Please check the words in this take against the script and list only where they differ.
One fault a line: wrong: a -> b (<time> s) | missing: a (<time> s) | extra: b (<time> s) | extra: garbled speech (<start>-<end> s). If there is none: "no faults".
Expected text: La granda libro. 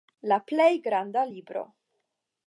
extra: plej (0.5 s)